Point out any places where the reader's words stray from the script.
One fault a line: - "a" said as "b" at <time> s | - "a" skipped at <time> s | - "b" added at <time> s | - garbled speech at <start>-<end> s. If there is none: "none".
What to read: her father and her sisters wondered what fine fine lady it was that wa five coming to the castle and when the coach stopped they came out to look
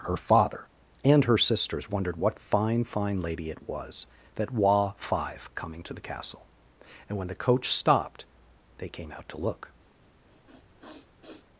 none